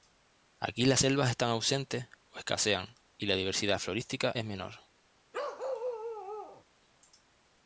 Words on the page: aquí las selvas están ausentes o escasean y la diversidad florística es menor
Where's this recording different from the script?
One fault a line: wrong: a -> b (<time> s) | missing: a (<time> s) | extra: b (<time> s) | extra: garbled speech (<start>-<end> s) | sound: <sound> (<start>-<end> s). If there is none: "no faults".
sound: bark (5.3-6.6 s)